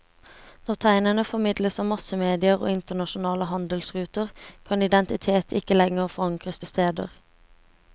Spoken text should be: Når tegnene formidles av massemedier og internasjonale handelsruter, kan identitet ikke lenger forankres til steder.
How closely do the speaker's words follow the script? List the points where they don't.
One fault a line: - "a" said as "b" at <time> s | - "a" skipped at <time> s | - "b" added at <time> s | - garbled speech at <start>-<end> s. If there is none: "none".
none